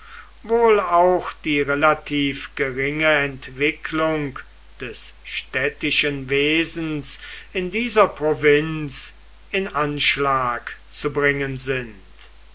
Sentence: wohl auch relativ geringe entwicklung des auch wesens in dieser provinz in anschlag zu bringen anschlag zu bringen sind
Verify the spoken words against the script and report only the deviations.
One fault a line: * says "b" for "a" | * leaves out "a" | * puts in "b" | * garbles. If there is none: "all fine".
* puts in "die"
* says "städtischen" for "auch"
* leaves out "anschlag zu bringen"